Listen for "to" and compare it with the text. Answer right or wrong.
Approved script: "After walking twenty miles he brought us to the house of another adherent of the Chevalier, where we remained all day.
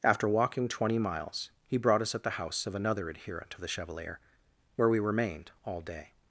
wrong